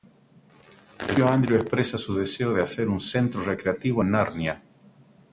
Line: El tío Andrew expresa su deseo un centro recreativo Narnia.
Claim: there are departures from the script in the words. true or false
true